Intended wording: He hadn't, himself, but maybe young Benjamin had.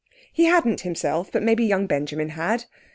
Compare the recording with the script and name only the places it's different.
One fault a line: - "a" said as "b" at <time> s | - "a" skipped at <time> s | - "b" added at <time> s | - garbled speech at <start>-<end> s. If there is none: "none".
none